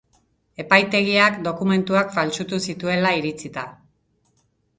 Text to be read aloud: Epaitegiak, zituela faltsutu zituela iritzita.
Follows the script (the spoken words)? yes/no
no